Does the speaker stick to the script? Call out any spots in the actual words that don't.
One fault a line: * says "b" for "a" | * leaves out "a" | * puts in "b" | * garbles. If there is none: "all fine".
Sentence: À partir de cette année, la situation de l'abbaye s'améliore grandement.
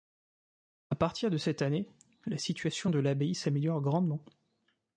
all fine